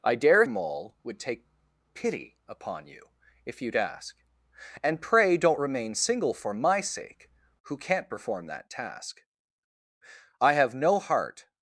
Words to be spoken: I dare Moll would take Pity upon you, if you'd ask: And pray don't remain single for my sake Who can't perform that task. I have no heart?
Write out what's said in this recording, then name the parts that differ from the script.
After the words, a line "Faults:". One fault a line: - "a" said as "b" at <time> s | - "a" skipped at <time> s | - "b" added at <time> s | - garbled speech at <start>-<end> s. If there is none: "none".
I dare Moll would take Pity upon you, if you'd ask: And pray don't remain single for my sake Who can't perform that task. I have no heart?
Faults:
none